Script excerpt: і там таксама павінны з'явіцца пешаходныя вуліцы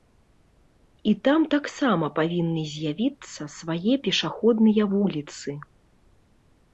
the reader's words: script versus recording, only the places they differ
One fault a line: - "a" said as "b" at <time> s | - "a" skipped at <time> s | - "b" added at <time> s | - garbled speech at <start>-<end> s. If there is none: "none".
- "свае" added at 3.6 s